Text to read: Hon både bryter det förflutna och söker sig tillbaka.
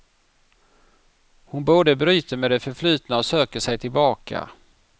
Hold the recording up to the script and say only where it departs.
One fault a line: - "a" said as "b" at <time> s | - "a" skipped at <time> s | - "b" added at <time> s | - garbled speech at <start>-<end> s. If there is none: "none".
- "med" added at 2.4 s